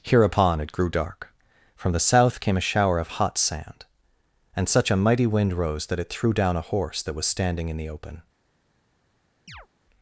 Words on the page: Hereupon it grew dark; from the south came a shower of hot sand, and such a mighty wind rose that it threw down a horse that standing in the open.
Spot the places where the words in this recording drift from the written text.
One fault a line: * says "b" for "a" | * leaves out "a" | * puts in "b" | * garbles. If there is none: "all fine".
* puts in "was"